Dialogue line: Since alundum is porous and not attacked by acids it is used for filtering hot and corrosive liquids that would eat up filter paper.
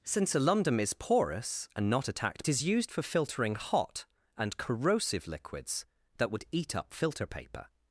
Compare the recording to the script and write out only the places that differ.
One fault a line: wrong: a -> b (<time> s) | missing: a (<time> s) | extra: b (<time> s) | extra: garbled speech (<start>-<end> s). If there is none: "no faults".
missing: by acids it (2.4 s)